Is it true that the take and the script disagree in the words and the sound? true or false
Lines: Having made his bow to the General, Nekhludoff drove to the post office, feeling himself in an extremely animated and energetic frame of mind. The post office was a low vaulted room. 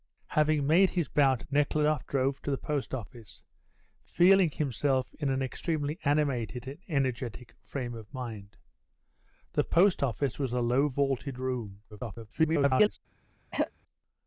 true